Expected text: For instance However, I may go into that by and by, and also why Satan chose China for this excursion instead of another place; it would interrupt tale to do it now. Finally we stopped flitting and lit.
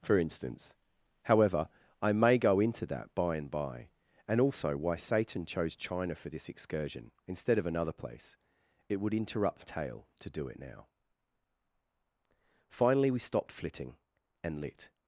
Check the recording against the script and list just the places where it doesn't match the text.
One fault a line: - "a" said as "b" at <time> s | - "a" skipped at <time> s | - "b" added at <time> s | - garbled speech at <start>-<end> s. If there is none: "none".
none